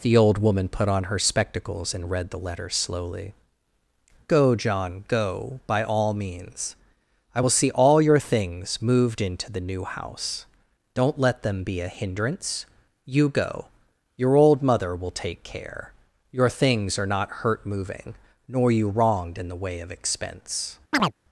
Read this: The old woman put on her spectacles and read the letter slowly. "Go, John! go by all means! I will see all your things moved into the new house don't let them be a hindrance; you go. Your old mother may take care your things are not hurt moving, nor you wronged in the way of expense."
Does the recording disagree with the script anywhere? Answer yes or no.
yes